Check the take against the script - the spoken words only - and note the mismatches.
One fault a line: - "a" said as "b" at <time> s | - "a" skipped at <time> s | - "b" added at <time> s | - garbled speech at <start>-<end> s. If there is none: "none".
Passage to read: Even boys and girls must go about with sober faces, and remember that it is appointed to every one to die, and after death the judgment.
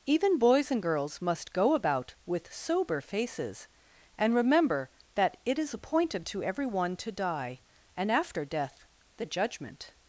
none